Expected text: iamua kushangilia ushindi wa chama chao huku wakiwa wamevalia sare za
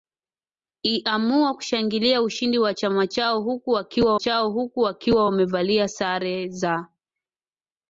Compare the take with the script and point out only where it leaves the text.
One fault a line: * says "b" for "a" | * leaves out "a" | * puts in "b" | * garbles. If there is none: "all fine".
* puts in "chao huku wakiwa"